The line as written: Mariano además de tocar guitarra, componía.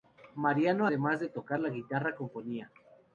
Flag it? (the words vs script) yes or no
yes